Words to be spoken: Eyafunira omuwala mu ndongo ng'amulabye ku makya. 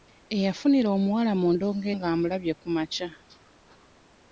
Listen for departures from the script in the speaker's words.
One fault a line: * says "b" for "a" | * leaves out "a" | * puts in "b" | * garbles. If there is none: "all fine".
all fine